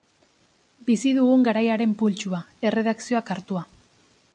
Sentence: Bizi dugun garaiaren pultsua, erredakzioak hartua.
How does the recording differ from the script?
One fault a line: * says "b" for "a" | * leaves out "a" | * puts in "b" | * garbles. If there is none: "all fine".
all fine